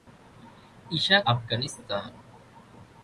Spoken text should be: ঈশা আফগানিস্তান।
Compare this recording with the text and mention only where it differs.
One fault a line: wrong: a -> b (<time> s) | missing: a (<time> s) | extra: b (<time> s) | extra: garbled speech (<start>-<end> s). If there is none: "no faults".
no faults